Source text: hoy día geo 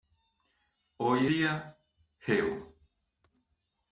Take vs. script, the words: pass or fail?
pass